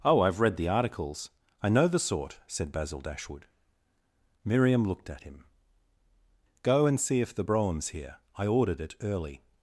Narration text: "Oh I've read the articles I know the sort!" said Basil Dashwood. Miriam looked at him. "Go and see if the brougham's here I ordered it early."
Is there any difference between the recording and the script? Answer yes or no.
no